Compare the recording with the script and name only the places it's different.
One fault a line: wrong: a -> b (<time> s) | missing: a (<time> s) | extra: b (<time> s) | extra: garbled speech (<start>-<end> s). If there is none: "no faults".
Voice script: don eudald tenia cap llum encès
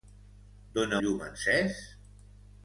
missing: eudald tenia cap (0.9 s)